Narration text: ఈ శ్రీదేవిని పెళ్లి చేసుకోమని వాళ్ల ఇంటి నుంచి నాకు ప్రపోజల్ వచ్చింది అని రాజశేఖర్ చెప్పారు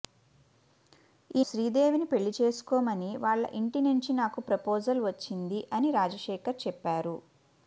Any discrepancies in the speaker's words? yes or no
no